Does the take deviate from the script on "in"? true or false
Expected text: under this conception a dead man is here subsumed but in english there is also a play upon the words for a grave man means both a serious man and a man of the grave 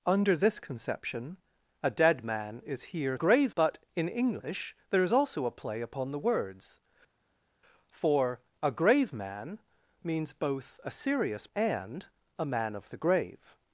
false